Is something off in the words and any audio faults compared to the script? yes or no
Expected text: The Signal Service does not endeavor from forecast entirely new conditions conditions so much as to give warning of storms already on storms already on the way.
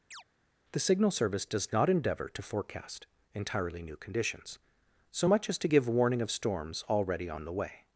yes